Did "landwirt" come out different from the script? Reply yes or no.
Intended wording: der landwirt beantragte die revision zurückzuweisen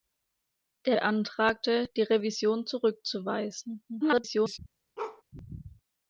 yes